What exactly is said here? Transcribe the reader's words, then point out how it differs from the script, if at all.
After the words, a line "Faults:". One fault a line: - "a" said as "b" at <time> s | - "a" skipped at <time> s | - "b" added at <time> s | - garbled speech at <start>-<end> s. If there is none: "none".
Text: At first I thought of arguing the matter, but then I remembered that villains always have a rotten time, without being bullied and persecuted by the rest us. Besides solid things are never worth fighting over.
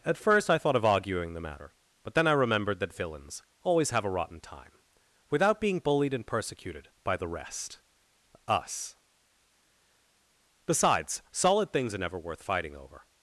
At first I thought of arguing the matter, but then I remembered that villains always have a rotten time, without being bullied and persecuted by the rest us. Besides solid things are never worth fighting over.
Faults:
none